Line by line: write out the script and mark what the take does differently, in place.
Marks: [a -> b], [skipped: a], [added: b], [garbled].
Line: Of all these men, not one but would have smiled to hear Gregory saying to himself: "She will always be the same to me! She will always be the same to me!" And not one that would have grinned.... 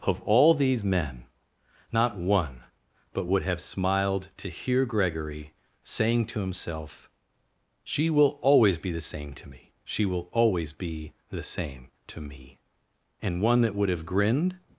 Of all these men, not one but would have smiled to hear Gregory saying to himself: "She will always be the same to me! She will always be the same to me!" And [skipped: not] one that would have grinned....